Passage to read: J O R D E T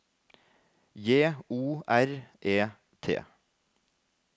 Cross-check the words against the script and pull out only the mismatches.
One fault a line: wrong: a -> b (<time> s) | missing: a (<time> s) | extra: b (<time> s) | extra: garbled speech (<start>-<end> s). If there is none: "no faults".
missing: D (2.1 s)